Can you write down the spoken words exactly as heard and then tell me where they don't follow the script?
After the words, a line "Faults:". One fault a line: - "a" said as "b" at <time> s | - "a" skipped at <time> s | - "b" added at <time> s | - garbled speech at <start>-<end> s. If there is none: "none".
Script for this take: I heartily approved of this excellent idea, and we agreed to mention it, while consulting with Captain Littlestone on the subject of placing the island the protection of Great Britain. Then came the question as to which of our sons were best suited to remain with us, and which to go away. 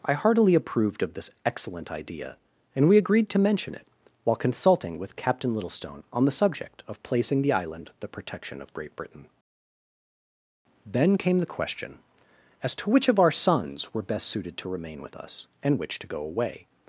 I heartily approved of this excellent idea, and we agreed to mention it, while consulting with Captain Littlestone on the subject of placing the island the protection of Great Britain. Then came the question as to which of our sons were best suited to remain with us, and which to go away.
Faults:
none